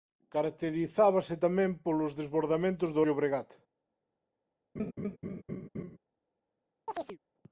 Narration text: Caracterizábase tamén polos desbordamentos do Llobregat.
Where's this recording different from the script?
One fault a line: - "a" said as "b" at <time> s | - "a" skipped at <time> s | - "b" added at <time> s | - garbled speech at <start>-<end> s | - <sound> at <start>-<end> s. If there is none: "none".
- laugh at 4.8-6.0 s
- chirp at 6.9-7.2 s